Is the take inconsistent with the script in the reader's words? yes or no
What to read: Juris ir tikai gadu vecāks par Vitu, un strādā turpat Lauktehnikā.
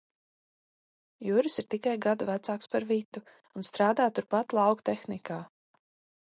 no